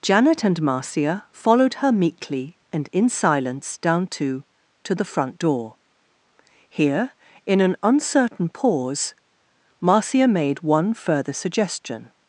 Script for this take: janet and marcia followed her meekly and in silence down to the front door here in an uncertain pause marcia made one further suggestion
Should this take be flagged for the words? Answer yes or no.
yes